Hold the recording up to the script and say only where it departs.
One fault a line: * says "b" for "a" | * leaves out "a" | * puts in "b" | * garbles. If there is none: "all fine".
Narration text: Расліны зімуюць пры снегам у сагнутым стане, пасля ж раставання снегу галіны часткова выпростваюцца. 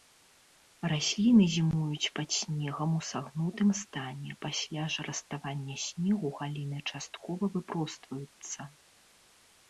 * says "пад" for "пры"